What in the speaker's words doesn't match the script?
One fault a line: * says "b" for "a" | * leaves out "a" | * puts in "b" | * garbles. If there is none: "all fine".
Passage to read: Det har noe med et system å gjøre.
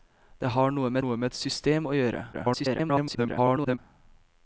* puts in "noe med"
* garbles